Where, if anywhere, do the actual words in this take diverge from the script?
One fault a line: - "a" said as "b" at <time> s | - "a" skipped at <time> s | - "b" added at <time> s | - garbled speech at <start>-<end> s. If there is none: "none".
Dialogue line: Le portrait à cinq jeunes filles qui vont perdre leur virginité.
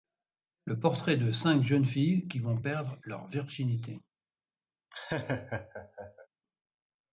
- "à" said as "de" at 1.2 s